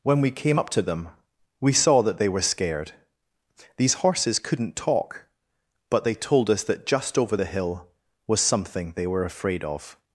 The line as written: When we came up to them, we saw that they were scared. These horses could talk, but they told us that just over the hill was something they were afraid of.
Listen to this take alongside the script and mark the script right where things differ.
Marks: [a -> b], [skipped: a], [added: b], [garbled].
When we came up to them, we saw that they were scared. These horses [could -> couldn't] talk, but they told us that just over the hill was something they were afraid of.